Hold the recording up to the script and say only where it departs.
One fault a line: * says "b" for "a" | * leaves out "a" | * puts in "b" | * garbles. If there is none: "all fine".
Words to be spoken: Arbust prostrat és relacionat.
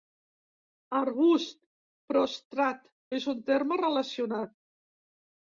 * puts in "un terme"